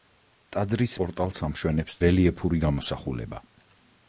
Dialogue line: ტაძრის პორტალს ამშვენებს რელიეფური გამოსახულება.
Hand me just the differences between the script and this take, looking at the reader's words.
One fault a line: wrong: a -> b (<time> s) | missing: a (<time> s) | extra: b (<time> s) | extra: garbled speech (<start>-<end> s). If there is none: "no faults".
no faults